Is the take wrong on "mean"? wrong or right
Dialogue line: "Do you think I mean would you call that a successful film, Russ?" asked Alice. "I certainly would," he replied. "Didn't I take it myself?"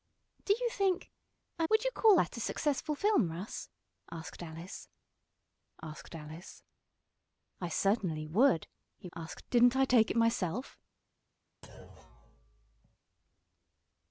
wrong